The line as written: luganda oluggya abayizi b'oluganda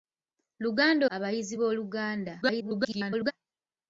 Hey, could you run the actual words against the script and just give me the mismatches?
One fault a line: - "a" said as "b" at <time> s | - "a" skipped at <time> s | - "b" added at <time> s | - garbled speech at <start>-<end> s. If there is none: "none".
- "oluggya" skipped at 1.1 s
- garbled speech at 2.4-3.3 s